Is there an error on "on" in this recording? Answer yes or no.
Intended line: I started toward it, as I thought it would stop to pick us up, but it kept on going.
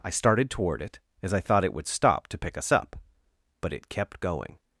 yes